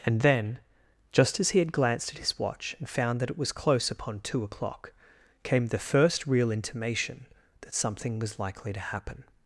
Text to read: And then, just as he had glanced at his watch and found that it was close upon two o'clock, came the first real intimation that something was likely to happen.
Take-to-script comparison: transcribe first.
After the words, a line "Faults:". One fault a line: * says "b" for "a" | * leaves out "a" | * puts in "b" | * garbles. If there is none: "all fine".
And then, just as he had glanced at his watch and found that it was close upon two o'clock, came the first real intimation that something was likely to happen.
Faults:
all fine